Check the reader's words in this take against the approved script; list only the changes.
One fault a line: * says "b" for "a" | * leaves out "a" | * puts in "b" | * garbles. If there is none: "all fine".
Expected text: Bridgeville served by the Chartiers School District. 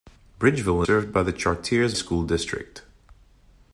all fine